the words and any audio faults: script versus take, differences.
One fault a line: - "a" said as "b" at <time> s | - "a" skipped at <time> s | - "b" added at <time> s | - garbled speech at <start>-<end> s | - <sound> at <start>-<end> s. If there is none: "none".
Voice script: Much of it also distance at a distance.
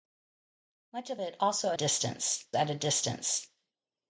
none